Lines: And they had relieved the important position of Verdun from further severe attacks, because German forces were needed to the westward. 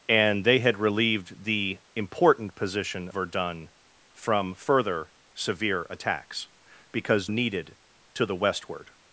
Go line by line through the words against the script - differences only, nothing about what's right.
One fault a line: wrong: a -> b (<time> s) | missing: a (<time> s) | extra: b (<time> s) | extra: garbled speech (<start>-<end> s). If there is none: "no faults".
missing: of (3.1 s)
missing: German forces were (7.3 s)